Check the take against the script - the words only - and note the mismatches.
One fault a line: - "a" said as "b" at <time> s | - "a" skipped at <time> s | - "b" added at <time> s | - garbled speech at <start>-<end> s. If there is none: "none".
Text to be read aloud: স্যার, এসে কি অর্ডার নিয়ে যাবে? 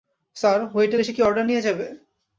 - "ওয়েটার" added at 0.7 s